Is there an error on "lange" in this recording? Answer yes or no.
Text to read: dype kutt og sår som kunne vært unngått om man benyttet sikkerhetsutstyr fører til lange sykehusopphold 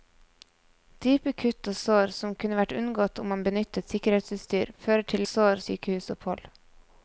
yes